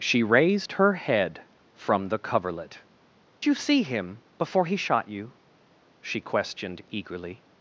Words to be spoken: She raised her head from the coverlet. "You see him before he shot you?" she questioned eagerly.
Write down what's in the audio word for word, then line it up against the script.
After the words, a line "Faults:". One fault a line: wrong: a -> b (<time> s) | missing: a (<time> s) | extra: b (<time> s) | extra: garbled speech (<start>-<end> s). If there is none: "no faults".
She raised her head from the coverlet. "You see him before he shot you?" she questioned eagerly.
Faults:
no faults